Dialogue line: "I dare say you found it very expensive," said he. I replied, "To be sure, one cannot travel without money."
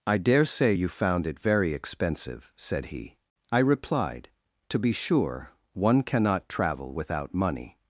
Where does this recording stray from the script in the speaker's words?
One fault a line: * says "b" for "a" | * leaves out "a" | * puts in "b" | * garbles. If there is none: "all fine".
all fine